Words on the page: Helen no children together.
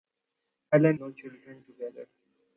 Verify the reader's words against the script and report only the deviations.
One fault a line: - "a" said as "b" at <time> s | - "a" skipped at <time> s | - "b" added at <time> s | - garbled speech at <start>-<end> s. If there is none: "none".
none